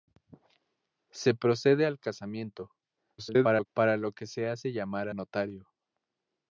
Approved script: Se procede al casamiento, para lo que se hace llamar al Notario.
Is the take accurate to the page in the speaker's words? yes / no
no